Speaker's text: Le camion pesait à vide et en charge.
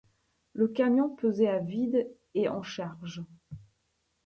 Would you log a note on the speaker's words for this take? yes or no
no